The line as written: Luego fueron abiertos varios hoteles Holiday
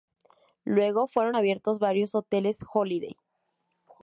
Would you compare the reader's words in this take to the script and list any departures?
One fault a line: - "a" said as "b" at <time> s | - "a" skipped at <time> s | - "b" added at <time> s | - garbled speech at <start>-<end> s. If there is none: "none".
none